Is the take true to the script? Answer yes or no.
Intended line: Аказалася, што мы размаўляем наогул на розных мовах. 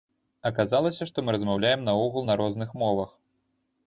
yes